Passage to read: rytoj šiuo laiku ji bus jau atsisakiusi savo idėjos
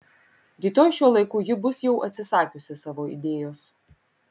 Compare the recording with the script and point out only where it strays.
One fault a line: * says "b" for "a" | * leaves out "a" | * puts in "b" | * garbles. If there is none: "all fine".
all fine